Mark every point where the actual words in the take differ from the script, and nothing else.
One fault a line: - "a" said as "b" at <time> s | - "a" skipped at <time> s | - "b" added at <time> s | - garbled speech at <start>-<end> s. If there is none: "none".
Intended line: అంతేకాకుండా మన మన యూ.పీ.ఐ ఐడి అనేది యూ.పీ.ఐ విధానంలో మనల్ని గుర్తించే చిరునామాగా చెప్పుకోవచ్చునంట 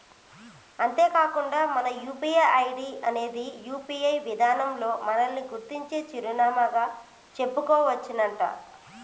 - "మన" skipped at 1.9 s